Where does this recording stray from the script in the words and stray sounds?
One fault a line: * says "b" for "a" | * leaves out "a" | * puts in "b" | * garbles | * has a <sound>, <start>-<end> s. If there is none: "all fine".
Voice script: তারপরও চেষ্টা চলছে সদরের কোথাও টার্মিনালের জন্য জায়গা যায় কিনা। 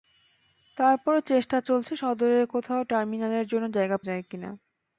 all fine